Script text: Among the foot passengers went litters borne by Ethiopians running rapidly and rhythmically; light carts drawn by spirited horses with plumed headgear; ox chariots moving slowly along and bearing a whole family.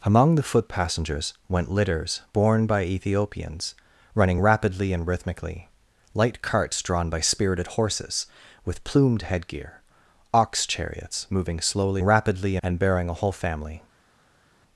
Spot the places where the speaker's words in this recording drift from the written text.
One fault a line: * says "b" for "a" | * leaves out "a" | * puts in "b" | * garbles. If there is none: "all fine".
* says "rapidly" for "along"